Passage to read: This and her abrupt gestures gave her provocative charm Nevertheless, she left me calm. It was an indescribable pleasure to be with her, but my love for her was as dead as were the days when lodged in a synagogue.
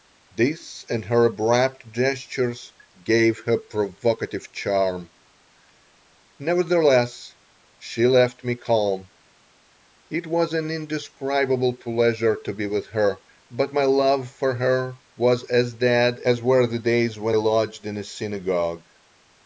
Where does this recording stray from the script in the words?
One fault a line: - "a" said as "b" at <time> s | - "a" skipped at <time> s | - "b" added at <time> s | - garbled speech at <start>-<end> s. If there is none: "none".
none